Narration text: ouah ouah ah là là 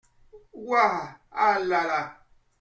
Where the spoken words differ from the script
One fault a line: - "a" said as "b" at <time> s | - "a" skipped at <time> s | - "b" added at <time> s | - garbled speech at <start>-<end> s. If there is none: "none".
- "ouah" skipped at 1.1 s